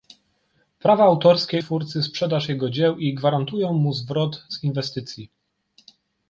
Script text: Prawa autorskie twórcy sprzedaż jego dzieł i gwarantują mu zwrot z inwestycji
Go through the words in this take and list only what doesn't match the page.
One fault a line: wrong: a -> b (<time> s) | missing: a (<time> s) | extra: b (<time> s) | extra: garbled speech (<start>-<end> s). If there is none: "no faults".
no faults